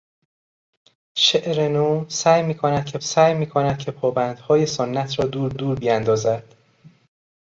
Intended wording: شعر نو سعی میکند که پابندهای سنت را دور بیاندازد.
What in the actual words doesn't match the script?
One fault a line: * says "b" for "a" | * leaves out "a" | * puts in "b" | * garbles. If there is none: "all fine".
* puts in "سعی میکند که"
* puts in "دور"